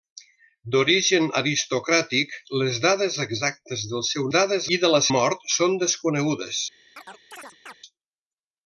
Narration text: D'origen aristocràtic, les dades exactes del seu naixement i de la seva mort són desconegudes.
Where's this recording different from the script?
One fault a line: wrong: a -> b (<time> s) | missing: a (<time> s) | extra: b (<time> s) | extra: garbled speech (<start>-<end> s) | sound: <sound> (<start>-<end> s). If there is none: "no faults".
wrong: naixement -> dades (4.3 s)
missing: seva (5.0 s)
sound: chirp (7.0-7.8 s)